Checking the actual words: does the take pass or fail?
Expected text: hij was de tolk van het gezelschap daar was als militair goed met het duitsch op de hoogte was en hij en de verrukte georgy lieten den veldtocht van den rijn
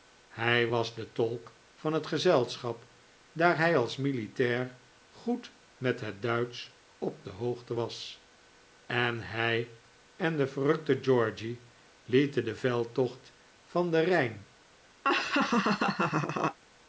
fail